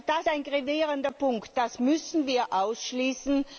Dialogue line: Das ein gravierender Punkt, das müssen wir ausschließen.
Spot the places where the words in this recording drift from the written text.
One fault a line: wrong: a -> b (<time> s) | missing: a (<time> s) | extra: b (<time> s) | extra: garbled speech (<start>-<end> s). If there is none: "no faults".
no faults